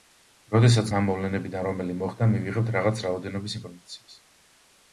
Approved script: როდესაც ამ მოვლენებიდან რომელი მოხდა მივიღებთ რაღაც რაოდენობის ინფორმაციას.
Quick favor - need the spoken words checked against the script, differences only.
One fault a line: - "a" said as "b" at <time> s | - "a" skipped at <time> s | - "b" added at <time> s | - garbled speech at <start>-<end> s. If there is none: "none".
none